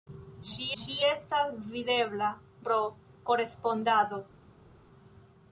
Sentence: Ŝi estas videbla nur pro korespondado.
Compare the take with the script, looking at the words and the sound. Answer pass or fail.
fail